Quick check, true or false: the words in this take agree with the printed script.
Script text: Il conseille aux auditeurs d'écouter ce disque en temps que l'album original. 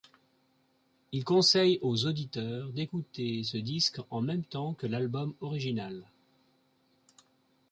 false